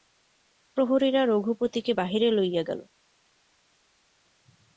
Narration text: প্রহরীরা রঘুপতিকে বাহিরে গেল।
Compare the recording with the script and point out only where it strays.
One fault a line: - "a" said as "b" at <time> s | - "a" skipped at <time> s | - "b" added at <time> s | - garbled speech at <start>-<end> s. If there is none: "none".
- "লইয়া" added at 2.3 s